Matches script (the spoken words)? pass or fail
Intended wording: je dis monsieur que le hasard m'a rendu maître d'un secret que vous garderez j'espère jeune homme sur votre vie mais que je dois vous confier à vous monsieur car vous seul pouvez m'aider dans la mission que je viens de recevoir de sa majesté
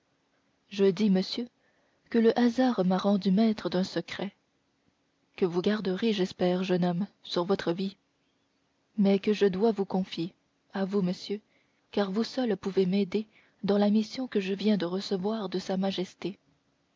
pass